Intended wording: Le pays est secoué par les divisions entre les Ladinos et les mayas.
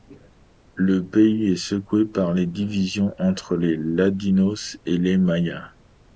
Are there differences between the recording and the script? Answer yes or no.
no